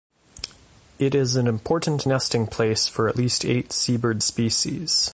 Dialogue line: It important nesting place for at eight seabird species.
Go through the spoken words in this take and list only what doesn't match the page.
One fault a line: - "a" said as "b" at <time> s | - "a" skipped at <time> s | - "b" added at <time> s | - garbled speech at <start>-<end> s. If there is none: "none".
- "is an" added at 1.1 s
- "least" added at 3.2 s